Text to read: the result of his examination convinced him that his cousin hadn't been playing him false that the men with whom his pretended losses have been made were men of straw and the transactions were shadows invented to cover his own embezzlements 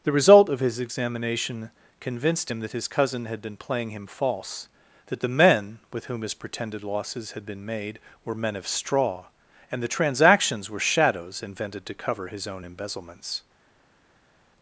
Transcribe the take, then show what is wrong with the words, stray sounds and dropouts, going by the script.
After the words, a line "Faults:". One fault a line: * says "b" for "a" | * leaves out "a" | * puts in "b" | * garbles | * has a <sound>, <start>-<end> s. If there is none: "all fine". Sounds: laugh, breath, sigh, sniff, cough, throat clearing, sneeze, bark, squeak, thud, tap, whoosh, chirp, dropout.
the result of his examination convinced him that his cousin had been playing him false that the men with whom his pretended losses had been made were men of straw and the transactions were shadows invented to cover his own embezzlements
Faults:
* says "had" for "hadn't"
* says "had" for "have"